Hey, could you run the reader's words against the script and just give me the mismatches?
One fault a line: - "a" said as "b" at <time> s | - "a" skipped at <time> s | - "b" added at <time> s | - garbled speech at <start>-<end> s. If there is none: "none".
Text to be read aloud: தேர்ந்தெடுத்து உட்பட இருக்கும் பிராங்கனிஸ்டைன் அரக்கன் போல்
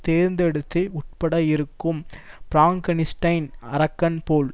none